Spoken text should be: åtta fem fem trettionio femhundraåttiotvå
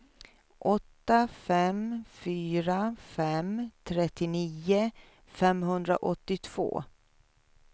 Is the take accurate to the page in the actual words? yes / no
no